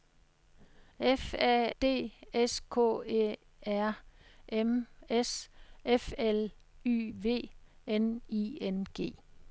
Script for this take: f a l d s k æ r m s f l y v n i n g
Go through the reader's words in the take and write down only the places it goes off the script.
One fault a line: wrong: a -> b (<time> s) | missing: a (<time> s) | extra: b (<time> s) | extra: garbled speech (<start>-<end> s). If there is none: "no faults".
missing: l (1.7 s)